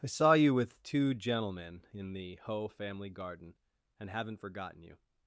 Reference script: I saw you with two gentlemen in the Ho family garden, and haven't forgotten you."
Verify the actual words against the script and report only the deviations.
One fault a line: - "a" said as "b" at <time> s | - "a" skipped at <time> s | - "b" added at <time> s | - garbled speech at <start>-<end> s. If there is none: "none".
none